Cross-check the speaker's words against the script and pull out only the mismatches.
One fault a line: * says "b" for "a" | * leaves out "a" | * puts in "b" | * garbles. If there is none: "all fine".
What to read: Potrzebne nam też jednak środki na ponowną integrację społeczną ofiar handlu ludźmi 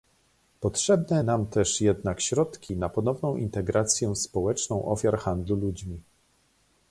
all fine